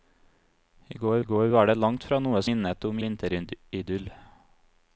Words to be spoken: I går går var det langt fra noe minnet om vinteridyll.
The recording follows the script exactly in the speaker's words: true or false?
true